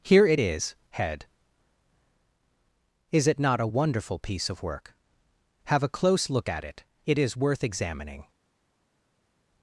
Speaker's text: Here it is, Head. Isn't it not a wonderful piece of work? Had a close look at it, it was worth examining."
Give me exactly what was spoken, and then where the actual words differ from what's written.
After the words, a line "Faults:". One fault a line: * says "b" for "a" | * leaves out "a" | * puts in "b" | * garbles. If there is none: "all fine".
Here it is, Head. Is it not a wonderful piece of work? Have a close look at it, it is worth examining."
Faults:
* says "Is" for "Isn't"
* says "Have" for "Had"
* says "is" for "was"